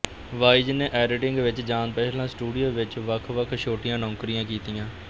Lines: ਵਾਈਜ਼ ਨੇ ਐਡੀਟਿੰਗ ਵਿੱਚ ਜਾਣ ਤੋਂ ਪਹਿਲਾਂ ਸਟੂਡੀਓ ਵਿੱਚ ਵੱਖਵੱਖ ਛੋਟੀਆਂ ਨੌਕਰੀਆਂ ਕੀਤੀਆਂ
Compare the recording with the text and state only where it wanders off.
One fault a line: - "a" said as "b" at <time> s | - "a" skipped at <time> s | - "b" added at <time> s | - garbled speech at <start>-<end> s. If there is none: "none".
- "ਤੋਂ" skipped at 1.9 s